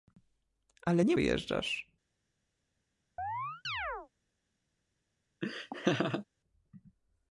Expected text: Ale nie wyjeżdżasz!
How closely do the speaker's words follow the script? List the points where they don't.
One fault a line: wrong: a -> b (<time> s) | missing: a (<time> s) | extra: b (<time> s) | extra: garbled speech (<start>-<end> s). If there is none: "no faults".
no faults